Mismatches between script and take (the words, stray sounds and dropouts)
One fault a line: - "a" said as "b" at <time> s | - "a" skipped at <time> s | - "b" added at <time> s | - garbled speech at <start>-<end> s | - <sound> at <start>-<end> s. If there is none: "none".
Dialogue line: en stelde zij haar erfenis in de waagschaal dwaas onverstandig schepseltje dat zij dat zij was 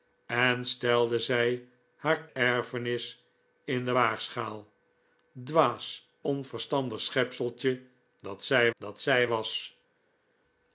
none